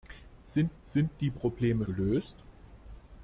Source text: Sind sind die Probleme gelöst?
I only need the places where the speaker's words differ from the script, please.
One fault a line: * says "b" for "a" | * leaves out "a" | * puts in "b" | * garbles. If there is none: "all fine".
all fine